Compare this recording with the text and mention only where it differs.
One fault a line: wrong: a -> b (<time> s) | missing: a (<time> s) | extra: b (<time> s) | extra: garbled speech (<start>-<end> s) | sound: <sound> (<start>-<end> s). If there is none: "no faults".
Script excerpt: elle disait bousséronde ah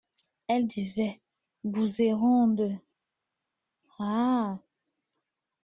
no faults